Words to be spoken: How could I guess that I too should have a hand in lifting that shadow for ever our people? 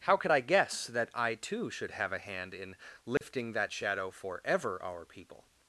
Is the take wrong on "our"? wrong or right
right